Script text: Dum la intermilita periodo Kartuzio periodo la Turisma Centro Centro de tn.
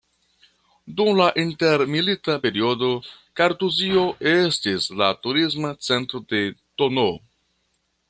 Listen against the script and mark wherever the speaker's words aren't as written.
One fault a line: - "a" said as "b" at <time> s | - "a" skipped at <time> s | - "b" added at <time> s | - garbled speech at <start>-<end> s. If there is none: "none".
- "periodo" said as "estis" at 4.3 s
- "Centro" skipped at 6.2 s